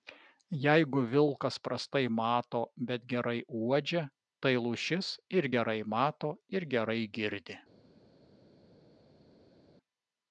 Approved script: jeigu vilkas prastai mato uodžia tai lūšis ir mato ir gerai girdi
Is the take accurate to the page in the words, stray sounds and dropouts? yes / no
no